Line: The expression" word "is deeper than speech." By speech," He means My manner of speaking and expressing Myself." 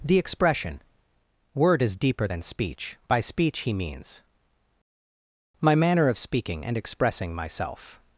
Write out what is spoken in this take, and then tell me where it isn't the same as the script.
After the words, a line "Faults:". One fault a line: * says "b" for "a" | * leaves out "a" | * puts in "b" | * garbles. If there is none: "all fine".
The expression" word "is deeper than speech." By speech," He means My manner of speaking and expressing Myself."
Faults:
all fine